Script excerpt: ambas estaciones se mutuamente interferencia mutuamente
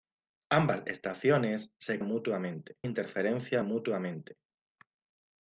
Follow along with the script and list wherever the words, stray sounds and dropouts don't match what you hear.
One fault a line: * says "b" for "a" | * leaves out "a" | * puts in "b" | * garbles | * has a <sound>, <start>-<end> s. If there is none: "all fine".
all fine